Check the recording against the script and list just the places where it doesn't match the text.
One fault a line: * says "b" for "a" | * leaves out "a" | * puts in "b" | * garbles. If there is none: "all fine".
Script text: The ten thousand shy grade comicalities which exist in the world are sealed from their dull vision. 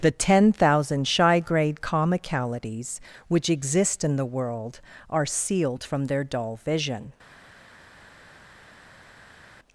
all fine